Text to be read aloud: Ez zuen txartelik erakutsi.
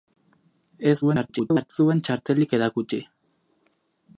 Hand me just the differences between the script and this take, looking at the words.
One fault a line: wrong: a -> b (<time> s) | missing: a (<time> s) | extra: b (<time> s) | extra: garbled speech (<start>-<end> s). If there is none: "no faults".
extra: garbled speech (1.0-1.7 s)